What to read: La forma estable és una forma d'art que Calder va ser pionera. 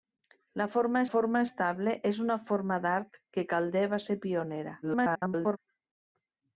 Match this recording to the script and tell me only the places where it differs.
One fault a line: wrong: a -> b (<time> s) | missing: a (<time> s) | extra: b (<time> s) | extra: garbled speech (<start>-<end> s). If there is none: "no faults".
extra: forma (1.1 s)
extra: garbled speech (4.8-5.6 s)